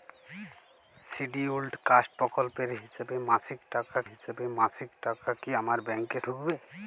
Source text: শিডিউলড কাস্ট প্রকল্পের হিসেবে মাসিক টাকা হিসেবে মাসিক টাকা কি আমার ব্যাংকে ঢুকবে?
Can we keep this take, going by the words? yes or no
yes